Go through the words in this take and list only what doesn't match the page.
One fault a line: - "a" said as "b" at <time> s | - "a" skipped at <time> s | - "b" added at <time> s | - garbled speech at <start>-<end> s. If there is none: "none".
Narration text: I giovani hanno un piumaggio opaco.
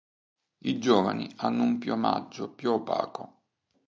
- "più" added at 2.5 s